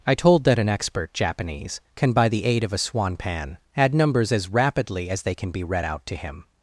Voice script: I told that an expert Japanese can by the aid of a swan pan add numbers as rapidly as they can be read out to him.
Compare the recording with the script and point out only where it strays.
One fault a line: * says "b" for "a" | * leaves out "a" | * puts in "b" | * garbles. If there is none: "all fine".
all fine